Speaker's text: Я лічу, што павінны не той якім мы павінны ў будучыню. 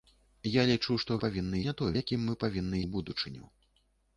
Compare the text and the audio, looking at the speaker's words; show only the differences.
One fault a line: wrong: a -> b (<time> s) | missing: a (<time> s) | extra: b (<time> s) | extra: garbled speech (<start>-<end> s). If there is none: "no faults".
no faults